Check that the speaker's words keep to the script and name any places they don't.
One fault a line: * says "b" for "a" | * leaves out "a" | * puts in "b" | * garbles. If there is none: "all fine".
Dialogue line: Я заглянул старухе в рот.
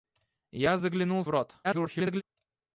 * leaves out "старухе"
* garbles